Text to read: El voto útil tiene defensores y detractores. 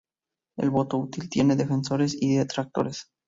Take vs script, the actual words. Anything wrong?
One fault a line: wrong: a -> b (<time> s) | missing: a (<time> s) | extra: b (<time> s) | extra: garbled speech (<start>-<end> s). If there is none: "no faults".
no faults